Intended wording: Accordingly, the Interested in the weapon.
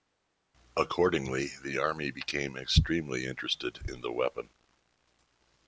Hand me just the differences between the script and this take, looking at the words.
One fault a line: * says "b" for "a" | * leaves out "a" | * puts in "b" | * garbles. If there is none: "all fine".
* puts in "Army became extremely"